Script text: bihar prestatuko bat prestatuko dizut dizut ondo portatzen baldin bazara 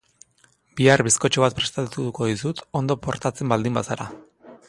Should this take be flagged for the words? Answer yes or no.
yes